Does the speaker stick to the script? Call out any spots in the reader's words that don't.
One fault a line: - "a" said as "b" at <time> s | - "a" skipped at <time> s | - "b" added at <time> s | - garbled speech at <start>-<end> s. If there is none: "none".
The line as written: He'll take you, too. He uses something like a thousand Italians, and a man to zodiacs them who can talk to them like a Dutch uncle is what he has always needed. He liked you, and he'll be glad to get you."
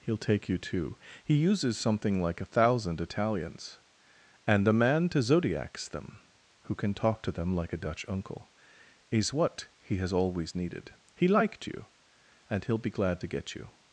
none